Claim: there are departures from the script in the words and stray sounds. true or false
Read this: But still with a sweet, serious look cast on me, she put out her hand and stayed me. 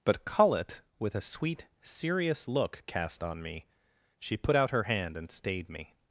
true